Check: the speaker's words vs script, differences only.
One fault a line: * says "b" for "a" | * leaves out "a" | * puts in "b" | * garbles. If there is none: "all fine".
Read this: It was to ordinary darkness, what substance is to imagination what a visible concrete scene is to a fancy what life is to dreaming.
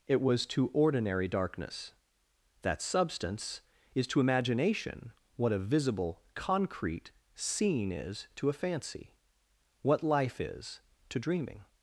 * says "that" for "what"